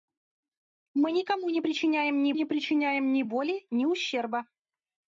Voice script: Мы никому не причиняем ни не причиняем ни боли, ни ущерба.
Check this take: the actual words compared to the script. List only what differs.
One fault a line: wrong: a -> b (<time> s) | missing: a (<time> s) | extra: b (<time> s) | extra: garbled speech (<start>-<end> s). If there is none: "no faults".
no faults